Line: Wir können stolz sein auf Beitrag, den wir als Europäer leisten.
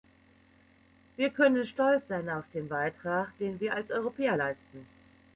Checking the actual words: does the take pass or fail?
fail